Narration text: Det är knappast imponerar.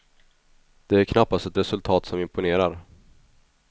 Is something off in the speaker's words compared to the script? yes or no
yes